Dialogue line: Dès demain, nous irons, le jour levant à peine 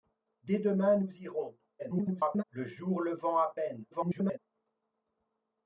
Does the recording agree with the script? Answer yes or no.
no